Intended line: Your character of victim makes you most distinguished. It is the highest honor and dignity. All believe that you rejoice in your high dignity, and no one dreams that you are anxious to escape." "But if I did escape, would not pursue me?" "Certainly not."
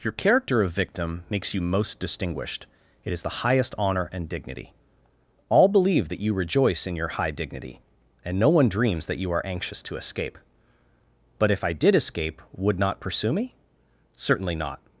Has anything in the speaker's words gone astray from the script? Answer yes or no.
no